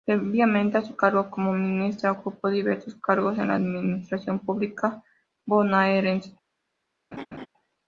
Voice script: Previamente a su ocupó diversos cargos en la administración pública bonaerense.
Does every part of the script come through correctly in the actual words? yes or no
no